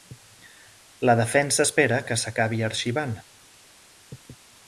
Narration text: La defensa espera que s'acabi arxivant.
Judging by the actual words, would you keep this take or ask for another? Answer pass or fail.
pass